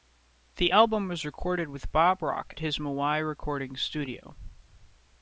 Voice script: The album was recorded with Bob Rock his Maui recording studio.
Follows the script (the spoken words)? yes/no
yes